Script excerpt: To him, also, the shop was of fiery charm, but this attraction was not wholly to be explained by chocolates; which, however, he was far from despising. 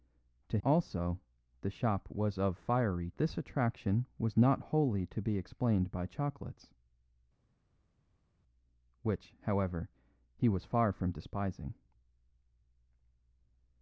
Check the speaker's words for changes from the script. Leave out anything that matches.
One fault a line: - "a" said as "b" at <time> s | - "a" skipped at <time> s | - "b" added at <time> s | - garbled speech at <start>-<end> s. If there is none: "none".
- "him" skipped at 0.6 s
- "charm but" skipped at 3.1 s